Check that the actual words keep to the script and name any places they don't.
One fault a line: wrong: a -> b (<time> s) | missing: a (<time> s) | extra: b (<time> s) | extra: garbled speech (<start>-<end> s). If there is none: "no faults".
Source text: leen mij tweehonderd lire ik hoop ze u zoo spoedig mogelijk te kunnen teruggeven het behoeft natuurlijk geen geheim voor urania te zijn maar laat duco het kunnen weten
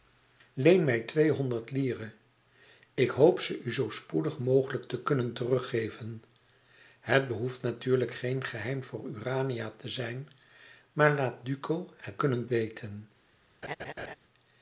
no faults